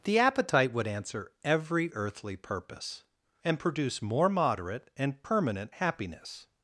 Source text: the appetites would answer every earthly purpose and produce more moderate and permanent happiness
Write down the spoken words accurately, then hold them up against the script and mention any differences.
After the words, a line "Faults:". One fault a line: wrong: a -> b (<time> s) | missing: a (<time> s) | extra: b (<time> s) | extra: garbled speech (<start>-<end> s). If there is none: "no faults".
the appetite would answer every earthly purpose and produce more moderate and permanent happiness
Faults:
wrong: appetites -> appetite (0.2 s)